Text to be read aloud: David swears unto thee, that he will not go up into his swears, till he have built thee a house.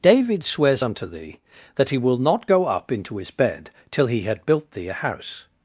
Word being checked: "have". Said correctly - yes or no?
no